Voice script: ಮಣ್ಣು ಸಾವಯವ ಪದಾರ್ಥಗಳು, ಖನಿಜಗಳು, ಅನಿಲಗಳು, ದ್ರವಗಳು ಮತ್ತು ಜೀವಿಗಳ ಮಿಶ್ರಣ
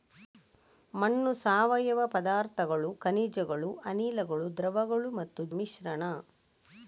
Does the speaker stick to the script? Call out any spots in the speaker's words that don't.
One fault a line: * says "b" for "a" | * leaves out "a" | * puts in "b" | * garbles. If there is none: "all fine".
* leaves out "ಜೀವಿಗಳ"